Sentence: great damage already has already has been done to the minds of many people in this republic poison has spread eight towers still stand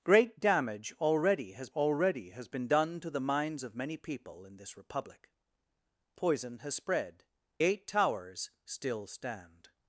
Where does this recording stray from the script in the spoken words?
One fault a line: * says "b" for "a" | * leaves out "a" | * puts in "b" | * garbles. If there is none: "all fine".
all fine